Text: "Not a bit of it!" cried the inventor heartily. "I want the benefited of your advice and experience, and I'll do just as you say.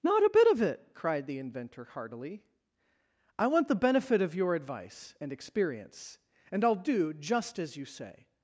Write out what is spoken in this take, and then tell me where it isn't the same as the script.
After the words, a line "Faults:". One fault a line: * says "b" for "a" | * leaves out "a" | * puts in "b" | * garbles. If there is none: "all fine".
"Not a bit of it!" cried the inventor heartily. "I want the benefit of your advice and experience, and I'll do just as you say.
Faults:
* says "benefit" for "benefited"